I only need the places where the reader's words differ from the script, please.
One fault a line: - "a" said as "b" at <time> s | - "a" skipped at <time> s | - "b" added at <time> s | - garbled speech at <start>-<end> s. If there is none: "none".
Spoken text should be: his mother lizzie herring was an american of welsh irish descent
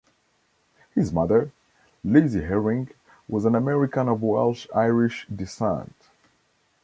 none